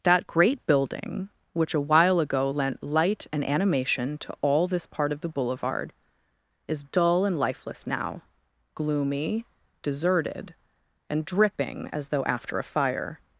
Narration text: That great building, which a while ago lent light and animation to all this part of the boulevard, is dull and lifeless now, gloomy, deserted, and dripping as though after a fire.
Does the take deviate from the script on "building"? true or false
false